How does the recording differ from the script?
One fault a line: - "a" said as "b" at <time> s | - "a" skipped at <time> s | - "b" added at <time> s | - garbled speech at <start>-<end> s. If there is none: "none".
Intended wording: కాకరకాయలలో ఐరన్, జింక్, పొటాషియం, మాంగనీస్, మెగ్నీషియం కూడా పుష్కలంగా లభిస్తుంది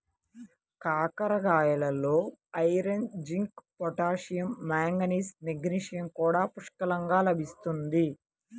none